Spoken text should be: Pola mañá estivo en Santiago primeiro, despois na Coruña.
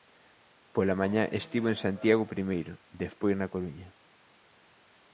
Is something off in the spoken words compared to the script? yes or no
no